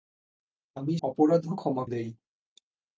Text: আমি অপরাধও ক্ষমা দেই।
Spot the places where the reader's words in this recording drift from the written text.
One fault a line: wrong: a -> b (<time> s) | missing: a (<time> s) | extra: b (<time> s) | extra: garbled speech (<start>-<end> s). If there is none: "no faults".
no faults